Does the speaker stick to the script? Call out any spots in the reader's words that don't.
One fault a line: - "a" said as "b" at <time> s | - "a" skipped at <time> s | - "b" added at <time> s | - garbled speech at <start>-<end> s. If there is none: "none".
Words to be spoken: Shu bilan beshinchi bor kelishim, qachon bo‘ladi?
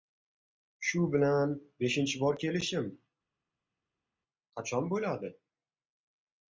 none